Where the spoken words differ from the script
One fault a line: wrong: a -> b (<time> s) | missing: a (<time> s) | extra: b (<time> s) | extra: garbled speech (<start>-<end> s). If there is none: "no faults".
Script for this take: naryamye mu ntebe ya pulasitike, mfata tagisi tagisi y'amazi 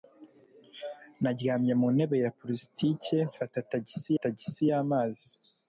no faults